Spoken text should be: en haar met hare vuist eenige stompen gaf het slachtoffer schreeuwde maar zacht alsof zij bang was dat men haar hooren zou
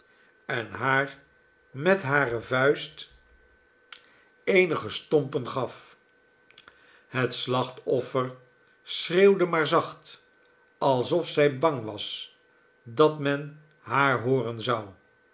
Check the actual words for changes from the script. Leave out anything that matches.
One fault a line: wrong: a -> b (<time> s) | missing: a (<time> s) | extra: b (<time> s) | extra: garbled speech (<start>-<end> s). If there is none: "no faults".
no faults